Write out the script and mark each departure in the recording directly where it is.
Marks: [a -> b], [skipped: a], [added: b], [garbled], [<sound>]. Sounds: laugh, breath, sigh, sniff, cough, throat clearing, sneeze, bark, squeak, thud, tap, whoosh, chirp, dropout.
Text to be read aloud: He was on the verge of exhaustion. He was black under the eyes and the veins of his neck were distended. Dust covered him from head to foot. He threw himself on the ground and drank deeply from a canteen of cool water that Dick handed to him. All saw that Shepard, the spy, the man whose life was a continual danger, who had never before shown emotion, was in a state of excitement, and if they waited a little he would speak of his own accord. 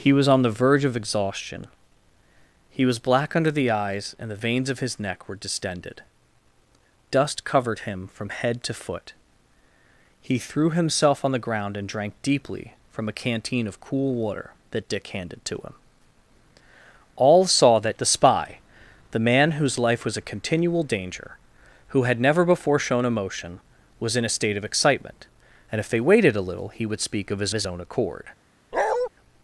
He was on the verge of exhaustion. He was black under the eyes and the veins of his neck were distended. Dust covered him from head to foot. He threw himself on the ground and drank deeply from a canteen of cool water that Dick handed to him. All saw that [skipped: Shepard,] the spy, the man whose life was a continual danger, who had never before shown emotion, was in a state of excitement, and if they waited a little he would speak of his [added: his] own accord. [bark]